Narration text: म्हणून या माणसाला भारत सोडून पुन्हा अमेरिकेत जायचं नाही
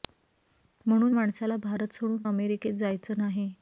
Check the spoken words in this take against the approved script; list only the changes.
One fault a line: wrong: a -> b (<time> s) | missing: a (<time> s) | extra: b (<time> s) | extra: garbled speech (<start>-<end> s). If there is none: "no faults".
missing: या (1.1 s)
missing: पुन्हा (2.2 s)